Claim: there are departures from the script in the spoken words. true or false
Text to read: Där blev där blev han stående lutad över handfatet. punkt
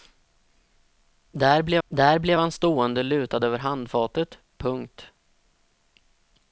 false